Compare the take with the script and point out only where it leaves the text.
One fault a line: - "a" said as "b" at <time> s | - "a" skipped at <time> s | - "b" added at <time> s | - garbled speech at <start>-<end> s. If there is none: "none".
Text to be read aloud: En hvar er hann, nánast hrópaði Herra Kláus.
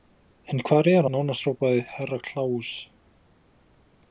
- "hann" skipped at 1.1 s